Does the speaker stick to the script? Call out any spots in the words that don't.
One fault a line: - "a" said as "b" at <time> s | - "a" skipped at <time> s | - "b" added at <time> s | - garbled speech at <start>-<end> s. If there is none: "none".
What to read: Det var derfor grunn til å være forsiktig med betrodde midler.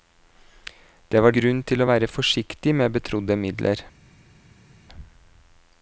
- "derfor" skipped at 1.4 s